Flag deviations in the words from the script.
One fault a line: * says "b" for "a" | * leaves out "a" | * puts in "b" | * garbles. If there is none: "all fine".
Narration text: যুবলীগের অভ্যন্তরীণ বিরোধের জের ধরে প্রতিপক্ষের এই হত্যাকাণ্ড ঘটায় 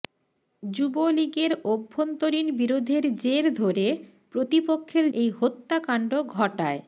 all fine